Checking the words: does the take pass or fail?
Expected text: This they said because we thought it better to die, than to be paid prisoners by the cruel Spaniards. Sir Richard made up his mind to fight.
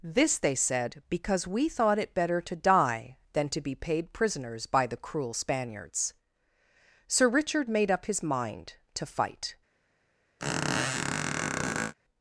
pass